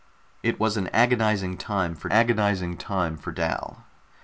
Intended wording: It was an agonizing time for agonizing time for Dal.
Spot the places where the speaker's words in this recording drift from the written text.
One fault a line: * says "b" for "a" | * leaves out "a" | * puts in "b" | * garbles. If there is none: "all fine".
all fine